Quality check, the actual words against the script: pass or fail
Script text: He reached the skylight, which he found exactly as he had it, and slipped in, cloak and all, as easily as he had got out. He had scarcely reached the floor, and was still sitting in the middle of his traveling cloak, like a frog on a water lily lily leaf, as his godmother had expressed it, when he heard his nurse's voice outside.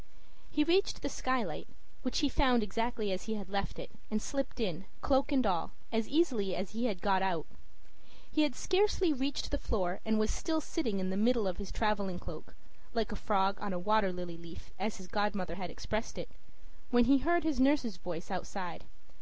fail